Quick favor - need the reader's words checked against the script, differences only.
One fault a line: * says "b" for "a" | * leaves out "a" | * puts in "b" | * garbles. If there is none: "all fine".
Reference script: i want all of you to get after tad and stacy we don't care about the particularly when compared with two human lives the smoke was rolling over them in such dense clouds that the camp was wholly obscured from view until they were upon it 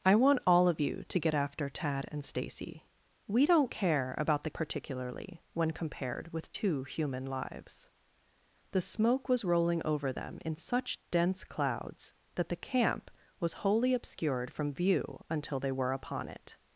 all fine